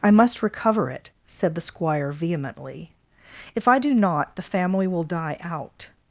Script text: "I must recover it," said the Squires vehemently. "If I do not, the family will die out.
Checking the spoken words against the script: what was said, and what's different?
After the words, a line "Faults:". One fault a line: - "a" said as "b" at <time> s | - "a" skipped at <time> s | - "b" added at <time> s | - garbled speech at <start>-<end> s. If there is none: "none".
"I must recover it," said the Squire vehemently. "If I do not, the family will die out.
Faults:
- "Squires" said as "Squire" at 1.6 s